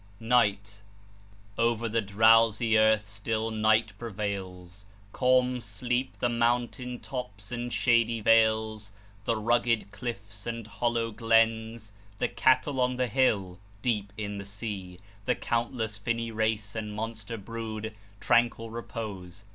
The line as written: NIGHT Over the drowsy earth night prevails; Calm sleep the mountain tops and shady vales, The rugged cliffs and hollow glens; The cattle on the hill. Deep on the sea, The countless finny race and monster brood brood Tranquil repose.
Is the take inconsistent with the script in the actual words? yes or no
yes